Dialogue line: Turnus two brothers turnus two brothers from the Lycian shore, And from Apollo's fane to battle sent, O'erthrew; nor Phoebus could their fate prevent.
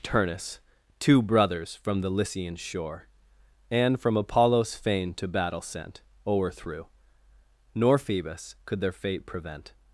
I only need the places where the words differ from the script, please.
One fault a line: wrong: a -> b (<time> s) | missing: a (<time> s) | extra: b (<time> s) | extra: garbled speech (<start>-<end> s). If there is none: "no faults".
missing: turnus two brothers (1.8 s)